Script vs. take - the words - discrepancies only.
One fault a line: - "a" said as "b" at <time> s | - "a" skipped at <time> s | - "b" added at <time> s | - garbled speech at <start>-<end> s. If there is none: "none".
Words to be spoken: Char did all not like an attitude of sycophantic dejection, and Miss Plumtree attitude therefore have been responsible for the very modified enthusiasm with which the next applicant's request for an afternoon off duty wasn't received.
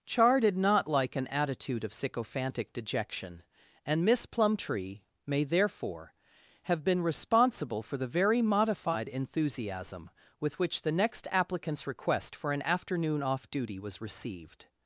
- "all" skipped at 0.6 s
- "attitude" said as "may" at 5.3 s
- "wasn't" said as "was" at 13.8 s